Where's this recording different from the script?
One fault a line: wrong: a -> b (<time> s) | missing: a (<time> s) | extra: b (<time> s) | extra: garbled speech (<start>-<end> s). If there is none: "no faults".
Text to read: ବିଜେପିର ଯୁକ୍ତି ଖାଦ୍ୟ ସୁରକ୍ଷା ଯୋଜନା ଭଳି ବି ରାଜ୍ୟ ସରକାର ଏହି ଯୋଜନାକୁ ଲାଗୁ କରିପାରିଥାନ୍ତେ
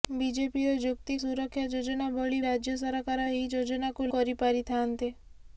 missing: ଖାଦ୍ୟ (1.2 s)
missing: ବି (2.4 s)
missing: ଲାଗୁ (4.1 s)